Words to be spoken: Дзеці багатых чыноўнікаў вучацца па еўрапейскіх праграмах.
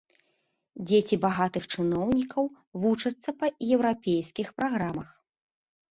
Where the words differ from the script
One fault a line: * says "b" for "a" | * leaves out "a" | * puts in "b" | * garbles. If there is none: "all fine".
all fine